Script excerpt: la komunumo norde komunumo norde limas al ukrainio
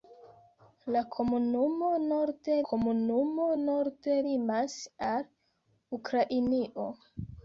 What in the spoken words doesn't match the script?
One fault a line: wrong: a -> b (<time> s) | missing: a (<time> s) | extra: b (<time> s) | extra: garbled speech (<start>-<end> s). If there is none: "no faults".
no faults